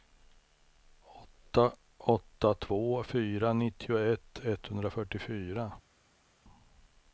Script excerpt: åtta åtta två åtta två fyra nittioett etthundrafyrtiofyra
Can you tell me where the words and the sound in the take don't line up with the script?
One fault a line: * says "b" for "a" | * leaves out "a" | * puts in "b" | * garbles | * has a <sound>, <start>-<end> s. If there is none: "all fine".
* leaves out "åtta två"